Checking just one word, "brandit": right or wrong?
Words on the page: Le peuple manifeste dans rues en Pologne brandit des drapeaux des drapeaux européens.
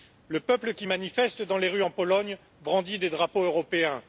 right